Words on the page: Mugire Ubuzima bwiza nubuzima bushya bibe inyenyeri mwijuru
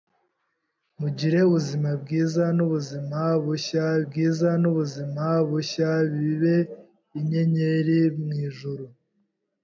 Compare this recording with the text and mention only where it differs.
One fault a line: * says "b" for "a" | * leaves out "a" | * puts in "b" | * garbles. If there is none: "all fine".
* puts in "bwiza nubuzima bushya"